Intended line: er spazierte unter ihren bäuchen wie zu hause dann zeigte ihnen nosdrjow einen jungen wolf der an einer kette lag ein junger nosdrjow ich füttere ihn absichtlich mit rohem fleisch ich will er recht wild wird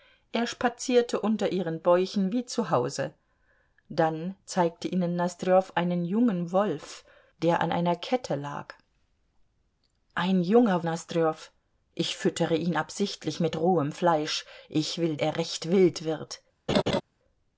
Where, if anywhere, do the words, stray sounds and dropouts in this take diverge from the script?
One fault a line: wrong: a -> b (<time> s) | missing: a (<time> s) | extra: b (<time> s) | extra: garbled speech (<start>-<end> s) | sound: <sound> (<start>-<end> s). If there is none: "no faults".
sound: laugh (16.7-17.0 s)